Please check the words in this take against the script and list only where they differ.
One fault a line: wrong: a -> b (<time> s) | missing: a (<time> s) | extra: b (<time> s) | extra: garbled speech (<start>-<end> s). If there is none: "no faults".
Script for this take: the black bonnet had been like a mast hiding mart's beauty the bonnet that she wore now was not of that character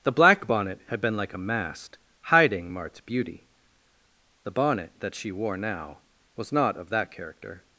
no faults